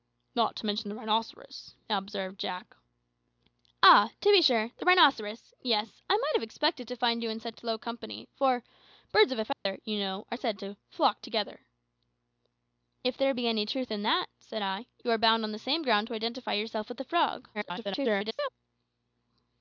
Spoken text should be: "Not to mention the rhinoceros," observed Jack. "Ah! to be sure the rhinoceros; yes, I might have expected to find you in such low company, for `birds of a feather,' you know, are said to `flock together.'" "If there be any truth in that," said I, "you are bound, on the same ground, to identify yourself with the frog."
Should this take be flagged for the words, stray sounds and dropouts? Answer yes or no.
yes